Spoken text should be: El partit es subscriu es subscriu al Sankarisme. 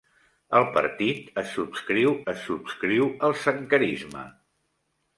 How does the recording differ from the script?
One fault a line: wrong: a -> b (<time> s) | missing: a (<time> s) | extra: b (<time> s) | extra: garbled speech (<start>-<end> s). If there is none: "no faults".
no faults